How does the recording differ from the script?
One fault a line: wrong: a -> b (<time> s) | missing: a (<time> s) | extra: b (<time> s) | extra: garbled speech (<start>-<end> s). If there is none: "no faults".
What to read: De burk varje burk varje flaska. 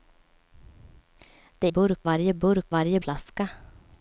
no faults